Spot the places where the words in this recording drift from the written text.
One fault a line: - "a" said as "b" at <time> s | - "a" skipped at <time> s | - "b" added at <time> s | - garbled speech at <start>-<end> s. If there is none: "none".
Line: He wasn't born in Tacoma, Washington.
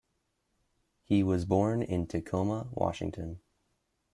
- "wasn't" said as "was" at 1.2 s